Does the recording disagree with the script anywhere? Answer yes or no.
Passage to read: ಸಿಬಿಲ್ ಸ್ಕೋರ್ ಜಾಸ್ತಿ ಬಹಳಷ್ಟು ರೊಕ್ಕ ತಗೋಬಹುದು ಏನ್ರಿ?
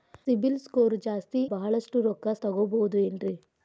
no